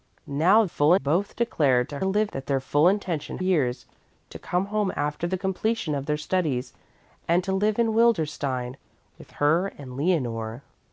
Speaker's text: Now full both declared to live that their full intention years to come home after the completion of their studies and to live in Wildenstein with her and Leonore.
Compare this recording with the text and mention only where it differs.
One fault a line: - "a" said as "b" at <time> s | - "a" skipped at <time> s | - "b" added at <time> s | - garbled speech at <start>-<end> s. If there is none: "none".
none